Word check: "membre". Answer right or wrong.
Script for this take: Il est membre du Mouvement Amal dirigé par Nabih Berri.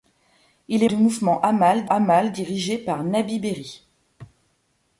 wrong